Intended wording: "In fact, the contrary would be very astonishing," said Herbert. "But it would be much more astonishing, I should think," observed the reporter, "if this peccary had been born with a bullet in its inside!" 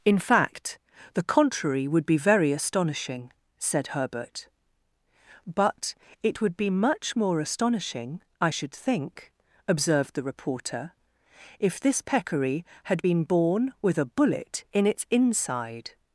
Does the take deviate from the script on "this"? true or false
false